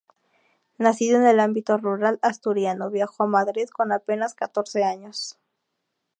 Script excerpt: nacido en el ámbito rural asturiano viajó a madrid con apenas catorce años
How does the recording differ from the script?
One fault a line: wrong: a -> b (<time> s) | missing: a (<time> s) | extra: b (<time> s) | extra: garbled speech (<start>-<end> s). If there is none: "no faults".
no faults